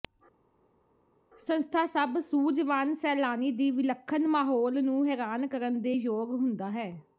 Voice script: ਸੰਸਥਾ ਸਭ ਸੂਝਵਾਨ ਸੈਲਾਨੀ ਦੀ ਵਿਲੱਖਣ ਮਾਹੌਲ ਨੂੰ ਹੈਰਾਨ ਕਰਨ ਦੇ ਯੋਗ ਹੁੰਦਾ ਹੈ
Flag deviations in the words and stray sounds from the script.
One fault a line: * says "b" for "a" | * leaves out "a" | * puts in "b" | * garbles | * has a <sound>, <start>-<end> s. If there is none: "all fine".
all fine